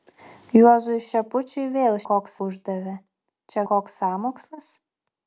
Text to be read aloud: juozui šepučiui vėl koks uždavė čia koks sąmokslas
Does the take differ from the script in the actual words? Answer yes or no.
no